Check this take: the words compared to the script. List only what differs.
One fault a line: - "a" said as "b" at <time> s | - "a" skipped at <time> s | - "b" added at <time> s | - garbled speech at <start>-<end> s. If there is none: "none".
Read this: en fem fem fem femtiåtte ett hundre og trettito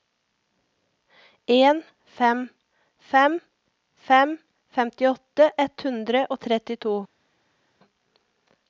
none